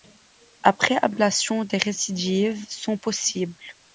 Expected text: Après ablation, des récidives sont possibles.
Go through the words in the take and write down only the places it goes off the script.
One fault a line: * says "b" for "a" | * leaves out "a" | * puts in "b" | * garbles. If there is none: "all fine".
all fine